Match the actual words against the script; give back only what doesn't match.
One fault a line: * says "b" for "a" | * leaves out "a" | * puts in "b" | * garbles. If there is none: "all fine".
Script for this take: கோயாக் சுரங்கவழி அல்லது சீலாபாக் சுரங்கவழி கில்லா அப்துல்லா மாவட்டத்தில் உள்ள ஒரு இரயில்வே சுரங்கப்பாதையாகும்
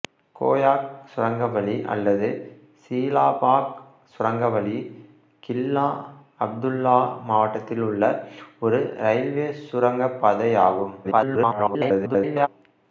* garbles